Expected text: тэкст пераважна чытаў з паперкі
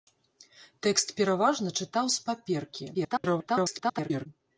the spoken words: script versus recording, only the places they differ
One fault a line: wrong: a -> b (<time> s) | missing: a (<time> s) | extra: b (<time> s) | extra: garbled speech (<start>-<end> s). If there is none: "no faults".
extra: garbled speech (2.9-4.3 s)